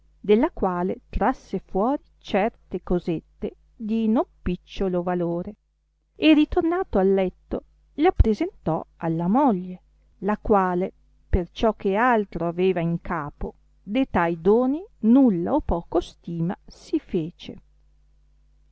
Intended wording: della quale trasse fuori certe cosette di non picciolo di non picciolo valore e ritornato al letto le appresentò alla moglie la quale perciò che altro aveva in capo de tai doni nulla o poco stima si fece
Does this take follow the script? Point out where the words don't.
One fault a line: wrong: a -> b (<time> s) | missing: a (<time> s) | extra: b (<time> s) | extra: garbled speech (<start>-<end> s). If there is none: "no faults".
missing: di non picciolo (5.0 s)